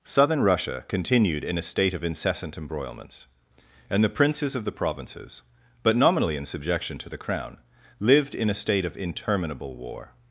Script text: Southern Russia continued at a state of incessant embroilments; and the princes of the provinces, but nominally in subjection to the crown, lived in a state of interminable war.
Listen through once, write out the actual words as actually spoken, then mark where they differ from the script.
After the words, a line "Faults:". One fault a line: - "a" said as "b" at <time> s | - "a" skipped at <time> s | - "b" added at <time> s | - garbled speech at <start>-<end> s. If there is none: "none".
Southern Russia continued in a state of incessant embroilments; and the princes of the provinces, but nominally in subjection to the crown, lived in a state of interminable war.
Faults:
- "at" said as "in" at 1.4 s